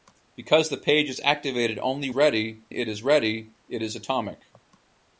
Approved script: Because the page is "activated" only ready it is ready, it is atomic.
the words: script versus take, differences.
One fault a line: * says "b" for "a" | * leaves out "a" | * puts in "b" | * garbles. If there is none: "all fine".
all fine